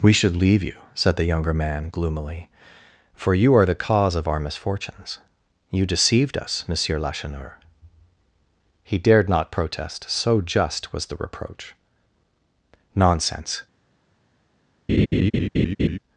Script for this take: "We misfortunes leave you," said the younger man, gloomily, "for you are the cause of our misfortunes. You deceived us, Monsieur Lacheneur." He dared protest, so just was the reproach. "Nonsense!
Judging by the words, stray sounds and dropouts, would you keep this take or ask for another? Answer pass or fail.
fail